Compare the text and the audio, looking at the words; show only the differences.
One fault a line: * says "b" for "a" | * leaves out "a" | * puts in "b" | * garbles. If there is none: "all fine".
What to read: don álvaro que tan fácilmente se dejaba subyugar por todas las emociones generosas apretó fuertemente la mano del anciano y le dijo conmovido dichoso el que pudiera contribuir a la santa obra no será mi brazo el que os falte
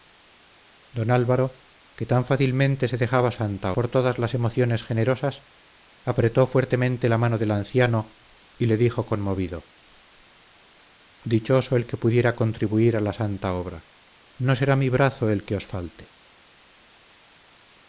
* says "santa" for "subyugar"